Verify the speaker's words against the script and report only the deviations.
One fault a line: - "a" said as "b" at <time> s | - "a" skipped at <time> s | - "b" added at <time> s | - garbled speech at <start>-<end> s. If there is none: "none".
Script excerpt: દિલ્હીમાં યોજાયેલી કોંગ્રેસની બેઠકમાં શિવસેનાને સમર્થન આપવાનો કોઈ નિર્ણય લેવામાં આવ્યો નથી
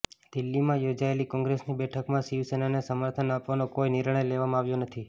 none